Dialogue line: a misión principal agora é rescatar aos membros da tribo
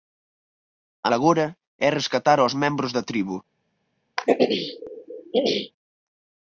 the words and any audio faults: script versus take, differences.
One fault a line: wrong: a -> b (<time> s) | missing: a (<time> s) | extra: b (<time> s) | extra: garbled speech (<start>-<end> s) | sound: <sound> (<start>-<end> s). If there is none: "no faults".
missing: misión principal (1.1 s)
sound: throat clearing (4.2-5.7 s)